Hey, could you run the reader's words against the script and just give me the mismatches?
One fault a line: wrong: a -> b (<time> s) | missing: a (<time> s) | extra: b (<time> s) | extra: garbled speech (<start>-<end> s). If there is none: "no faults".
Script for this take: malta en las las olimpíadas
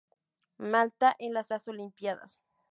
no faults